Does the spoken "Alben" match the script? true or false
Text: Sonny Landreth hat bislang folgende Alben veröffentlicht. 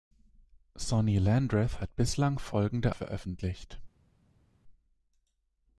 false